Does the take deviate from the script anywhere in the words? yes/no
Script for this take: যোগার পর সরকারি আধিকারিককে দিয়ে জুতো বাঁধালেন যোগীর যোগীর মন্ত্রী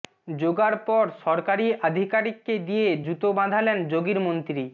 yes